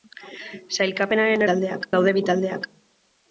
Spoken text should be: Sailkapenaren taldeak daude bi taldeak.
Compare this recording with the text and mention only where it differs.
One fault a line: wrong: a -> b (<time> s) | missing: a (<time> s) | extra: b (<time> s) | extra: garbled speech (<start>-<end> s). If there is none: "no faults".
no faults